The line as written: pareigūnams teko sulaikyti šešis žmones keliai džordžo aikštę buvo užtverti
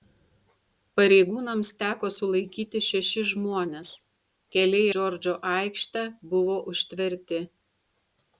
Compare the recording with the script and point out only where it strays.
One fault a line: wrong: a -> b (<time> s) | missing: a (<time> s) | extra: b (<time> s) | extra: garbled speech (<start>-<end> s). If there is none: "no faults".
no faults